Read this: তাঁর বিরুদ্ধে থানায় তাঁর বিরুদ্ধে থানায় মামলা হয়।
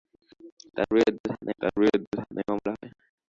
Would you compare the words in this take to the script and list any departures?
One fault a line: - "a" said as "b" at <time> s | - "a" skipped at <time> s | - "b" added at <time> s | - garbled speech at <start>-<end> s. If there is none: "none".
none